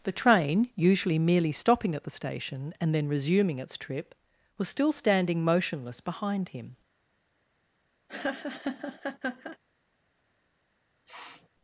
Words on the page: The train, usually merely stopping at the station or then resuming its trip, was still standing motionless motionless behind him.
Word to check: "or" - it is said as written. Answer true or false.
false